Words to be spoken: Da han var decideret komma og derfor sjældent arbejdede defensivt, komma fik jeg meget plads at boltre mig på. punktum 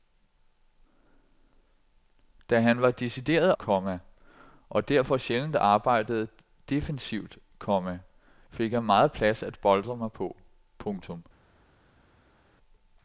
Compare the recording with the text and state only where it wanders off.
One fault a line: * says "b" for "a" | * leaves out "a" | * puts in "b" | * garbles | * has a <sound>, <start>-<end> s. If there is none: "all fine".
all fine